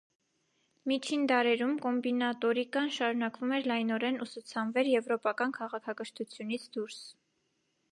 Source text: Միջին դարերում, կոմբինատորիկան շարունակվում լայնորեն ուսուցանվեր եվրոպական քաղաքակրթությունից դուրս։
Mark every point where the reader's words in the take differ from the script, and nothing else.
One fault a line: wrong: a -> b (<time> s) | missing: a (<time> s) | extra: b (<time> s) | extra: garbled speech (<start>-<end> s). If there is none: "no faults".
extra: էր (3.6 s)